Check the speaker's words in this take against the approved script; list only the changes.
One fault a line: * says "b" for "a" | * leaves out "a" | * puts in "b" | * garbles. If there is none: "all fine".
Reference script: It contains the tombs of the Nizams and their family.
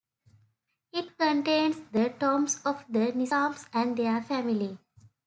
all fine